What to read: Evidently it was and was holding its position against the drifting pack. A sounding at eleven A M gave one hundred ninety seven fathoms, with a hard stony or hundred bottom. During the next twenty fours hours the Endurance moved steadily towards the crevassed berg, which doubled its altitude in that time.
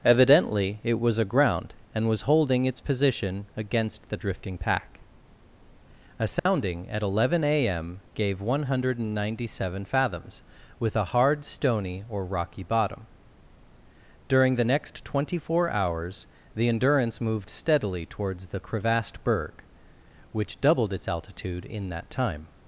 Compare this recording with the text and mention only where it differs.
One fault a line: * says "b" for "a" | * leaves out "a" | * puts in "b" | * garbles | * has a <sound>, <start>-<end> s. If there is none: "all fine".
* puts in "aground"
* has a dropout, 6.4-6.5 s
* says "rocky" for "hundred"
* says "four" for "fours"